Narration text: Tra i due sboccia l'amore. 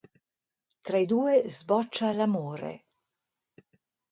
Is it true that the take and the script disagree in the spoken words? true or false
false